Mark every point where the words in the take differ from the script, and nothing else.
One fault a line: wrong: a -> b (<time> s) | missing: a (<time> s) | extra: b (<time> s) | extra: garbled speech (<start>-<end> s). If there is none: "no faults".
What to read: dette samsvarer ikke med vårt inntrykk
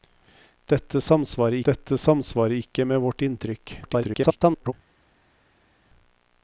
extra: dette samsvarer (1.7 s)
extra: garbled speech (3.8-4.7 s)